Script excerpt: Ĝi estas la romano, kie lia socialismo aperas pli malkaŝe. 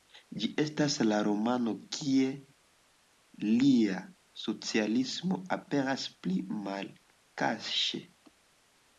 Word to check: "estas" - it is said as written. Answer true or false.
true